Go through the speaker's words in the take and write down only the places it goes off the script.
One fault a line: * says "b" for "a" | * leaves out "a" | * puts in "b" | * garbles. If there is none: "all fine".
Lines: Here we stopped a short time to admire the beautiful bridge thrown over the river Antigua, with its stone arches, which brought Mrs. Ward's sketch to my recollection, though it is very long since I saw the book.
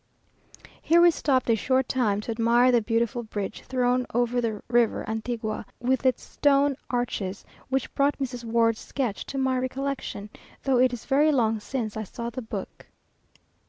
all fine